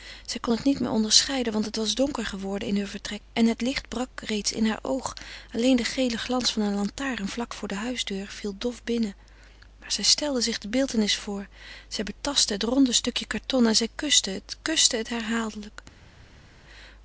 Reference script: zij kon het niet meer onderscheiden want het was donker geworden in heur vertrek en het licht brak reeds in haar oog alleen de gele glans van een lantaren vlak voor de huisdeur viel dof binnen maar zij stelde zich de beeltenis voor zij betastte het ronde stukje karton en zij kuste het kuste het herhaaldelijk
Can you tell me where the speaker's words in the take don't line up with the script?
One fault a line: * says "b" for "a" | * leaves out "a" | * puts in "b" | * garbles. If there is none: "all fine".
all fine